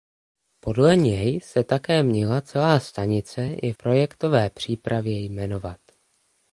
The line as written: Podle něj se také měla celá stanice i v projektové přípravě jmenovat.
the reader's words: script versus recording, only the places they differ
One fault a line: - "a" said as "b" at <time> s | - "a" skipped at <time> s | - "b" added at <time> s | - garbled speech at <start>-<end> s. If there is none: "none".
- "v" skipped at 3.7 s